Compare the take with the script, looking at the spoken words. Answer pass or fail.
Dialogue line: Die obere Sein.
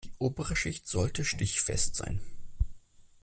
fail